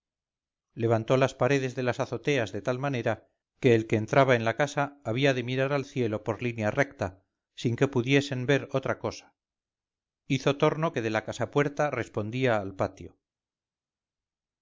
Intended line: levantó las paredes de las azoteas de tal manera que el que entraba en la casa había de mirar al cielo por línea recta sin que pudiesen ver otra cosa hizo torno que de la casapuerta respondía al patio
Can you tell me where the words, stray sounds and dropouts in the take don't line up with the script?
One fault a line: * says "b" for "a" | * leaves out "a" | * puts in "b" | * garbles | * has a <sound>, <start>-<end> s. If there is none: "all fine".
all fine